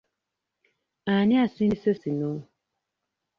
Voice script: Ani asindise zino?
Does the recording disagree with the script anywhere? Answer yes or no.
no